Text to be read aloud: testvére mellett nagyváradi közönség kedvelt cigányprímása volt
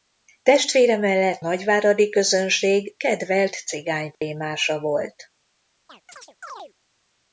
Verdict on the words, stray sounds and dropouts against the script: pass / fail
fail